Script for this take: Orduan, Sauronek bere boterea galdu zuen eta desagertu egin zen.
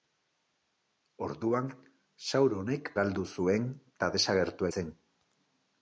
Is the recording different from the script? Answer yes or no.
yes